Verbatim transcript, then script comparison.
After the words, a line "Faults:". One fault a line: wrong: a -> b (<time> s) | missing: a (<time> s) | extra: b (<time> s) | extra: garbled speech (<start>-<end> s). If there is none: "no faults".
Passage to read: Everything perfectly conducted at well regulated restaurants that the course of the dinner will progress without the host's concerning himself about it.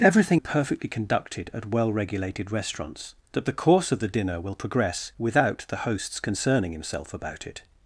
Everything perfectly conducted at well regulated restaurants that the course of the dinner will progress without the host's concerning himself about it.
Faults:
no faults